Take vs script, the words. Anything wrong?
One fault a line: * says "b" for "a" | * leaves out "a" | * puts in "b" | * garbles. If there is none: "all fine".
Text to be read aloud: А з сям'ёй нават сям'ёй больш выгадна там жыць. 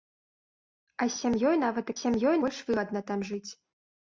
all fine